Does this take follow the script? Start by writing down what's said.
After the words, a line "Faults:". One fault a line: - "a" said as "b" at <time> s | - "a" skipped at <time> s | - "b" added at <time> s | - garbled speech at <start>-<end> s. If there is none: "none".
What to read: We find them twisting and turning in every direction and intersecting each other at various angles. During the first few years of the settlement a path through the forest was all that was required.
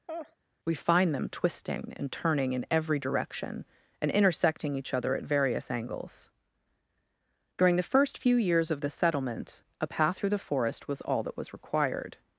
We find them twisting and turning in every direction and intersecting each other at various angles. During the first few years of the settlement a path through the forest was all that was required.
Faults:
none